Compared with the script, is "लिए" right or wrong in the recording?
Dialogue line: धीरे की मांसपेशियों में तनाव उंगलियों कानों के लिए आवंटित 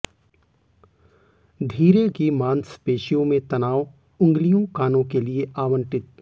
right